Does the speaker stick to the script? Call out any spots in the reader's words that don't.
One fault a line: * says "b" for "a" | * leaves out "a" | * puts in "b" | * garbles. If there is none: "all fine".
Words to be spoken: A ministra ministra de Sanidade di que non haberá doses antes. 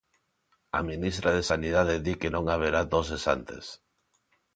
* leaves out "ministra"